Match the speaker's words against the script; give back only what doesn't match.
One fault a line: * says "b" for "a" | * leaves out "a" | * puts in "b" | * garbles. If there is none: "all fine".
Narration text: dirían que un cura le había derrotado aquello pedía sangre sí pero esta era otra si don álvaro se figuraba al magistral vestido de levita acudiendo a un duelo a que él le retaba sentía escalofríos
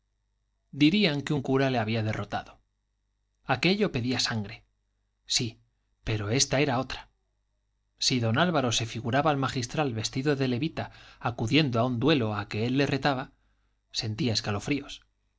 all fine